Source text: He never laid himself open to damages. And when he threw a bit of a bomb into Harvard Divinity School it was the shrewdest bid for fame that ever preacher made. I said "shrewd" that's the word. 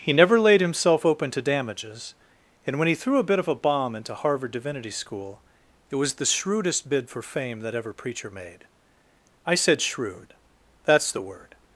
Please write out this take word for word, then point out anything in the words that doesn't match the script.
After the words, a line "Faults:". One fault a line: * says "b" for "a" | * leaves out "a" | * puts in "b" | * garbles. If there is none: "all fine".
He never laid himself open to damages. And when he threw a bit of a bomb into Harvard Divinity School it was the shrewdest bid for fame that ever preacher made. I said "shrewd" that's the word.
Faults:
all fine